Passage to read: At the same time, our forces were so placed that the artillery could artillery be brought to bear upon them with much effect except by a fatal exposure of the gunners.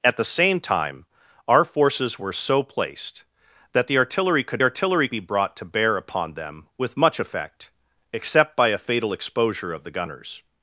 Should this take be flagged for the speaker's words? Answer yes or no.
no